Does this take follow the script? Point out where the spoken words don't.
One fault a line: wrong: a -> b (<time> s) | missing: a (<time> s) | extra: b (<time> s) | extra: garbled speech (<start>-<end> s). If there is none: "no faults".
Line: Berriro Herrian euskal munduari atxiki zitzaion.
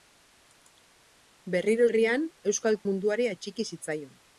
no faults